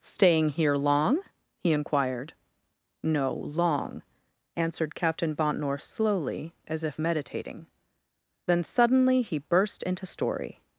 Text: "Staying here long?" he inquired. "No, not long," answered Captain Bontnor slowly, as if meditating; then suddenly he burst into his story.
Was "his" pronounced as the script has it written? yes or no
no